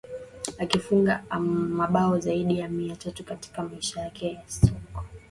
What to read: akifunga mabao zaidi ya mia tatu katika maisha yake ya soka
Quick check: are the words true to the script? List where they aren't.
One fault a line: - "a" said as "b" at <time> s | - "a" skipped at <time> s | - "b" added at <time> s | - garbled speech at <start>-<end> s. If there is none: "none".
none